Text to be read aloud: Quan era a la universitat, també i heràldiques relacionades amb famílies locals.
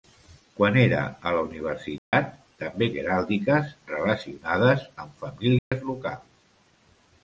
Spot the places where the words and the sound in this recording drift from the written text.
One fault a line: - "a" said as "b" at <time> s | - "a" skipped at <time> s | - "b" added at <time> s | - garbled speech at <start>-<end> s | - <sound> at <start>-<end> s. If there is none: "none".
- dropout at 2.0-2.1 s
- dropout at 5.6-5.7 s